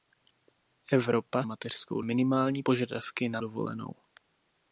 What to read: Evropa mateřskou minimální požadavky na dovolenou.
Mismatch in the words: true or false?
false